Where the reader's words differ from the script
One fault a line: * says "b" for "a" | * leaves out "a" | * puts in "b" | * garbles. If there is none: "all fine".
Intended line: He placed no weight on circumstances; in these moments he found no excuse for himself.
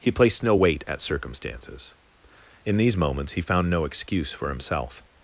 * says "at" for "on"